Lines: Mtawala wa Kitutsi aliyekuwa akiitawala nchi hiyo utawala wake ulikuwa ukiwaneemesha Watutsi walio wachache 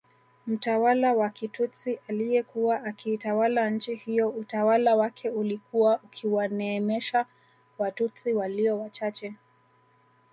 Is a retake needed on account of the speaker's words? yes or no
no